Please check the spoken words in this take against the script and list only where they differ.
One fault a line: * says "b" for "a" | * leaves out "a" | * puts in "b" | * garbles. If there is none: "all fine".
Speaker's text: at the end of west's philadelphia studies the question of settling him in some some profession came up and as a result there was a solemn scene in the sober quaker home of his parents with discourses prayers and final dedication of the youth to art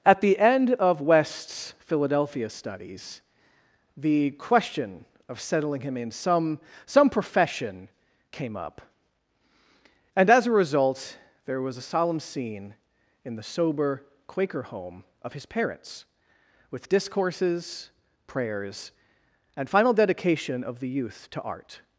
all fine